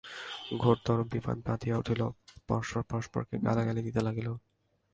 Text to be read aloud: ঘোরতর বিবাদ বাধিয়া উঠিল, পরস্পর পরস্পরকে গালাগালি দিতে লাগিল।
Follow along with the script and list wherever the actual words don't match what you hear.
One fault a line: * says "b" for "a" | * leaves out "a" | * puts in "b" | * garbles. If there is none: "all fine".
all fine